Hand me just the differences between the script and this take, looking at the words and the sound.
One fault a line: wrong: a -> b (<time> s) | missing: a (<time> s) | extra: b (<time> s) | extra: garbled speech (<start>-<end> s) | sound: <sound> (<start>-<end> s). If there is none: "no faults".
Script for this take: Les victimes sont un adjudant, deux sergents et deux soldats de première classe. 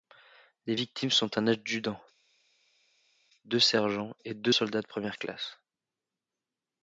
no faults